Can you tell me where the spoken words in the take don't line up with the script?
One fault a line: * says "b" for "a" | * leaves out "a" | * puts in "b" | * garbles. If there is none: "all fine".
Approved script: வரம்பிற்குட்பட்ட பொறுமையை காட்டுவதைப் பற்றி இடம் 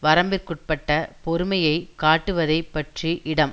all fine